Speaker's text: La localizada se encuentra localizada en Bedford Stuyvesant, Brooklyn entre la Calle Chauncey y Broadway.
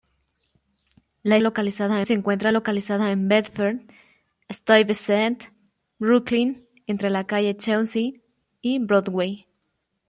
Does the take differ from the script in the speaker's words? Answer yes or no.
no